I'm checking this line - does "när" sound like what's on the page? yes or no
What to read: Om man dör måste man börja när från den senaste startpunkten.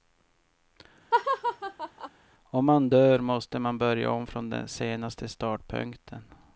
no